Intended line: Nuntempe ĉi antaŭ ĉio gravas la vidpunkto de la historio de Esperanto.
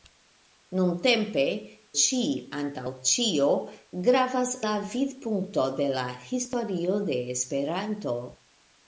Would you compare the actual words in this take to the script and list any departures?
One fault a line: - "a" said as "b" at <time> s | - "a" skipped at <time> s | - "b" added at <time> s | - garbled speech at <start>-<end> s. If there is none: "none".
none